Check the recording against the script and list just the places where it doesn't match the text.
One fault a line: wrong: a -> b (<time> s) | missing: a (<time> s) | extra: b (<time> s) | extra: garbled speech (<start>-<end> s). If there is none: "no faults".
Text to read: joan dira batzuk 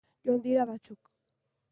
no faults